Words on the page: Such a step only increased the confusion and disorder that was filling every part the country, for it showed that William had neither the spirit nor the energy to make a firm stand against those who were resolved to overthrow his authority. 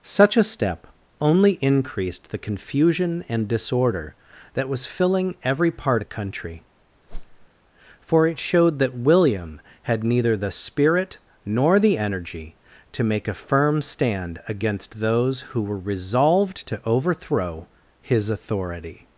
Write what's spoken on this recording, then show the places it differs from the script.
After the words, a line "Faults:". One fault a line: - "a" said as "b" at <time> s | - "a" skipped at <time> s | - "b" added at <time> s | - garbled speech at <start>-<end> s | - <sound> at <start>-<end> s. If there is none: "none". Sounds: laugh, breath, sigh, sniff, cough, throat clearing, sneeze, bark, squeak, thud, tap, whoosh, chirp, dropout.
Such a step only increased the confusion and disorder that was filling every part the country, for it showed that William had neither the spirit nor the energy to make a firm stand against those who were resolved to overthrow his authority.
Faults:
- whoosh at 7.1-7.5 s